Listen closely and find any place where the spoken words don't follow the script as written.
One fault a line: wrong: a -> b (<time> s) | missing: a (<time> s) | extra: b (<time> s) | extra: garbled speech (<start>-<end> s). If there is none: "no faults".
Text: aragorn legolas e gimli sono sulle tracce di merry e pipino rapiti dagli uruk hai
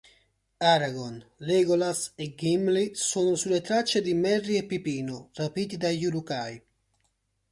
no faults